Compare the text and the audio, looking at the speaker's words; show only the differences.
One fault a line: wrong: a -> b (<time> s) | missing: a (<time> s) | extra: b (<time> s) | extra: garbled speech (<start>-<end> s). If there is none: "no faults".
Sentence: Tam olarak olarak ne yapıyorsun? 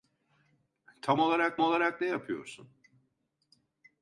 no faults